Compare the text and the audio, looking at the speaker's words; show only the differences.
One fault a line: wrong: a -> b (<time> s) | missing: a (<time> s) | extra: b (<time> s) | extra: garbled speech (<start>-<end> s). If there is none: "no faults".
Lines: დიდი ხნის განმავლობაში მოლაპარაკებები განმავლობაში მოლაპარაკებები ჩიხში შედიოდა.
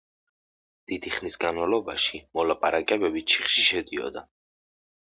missing: განმავლობაში მოლაპარაკებები (3.3 s)